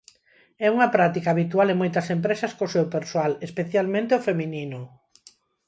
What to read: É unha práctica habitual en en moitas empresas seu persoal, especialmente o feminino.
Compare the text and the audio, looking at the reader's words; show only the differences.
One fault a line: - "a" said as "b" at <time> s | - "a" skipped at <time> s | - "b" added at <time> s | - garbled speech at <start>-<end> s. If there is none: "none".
- "en" skipped at 1.8 s
- "co" added at 2.6 s